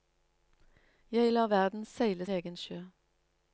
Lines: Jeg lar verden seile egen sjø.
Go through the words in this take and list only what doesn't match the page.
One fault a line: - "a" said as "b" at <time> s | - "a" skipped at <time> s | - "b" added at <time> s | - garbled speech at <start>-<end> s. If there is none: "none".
none